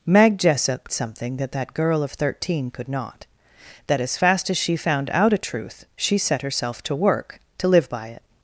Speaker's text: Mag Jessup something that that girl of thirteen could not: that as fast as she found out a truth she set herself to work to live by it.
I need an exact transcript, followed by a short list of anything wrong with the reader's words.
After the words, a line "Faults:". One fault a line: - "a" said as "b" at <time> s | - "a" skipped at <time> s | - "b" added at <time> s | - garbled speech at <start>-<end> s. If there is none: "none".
Mag Jessup something that that girl of thirteen could not: that as fast as she found out a truth she set herself to work to live by it.
Faults:
none